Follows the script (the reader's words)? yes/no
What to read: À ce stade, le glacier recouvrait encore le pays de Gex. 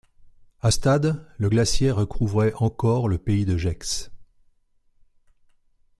no